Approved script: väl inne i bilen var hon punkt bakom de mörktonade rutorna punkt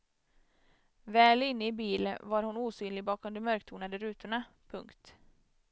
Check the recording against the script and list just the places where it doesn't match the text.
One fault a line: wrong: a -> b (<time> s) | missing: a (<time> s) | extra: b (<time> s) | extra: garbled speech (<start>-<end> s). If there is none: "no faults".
wrong: punkt -> osynlig (2.6 s)